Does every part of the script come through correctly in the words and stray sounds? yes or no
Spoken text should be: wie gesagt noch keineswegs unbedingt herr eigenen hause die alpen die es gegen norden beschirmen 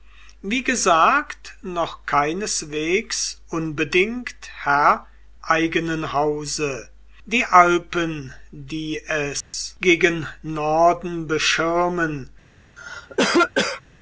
no